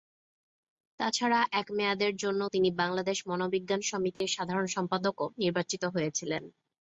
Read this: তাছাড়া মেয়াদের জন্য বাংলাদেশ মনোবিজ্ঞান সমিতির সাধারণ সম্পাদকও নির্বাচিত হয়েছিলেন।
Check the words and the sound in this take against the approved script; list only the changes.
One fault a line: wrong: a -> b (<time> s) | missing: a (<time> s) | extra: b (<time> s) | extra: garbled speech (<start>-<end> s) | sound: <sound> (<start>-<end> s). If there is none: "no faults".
extra: এক (1.5 s)
extra: তিনি (2.5 s)
sound: dropout (4.1-4.2 s)